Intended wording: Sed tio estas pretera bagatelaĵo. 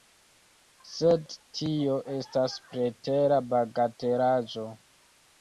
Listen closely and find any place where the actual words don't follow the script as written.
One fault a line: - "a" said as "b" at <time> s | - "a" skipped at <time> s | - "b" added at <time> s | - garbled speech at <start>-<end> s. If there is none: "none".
none